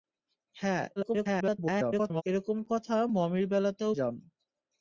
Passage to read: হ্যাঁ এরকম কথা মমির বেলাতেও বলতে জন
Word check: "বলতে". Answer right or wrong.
wrong